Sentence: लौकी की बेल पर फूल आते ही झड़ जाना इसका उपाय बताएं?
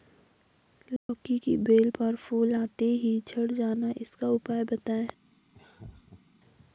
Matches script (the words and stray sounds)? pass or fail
fail